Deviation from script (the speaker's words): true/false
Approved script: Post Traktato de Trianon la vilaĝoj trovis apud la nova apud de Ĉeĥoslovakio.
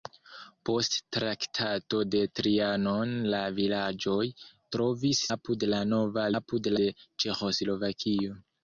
false